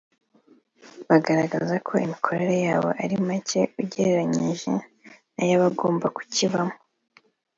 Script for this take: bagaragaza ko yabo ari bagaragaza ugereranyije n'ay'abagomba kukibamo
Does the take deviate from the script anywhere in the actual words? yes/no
yes